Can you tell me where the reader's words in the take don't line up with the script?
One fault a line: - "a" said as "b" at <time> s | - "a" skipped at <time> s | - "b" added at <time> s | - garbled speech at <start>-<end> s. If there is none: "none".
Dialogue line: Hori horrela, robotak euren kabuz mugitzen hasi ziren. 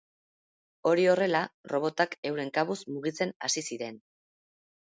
none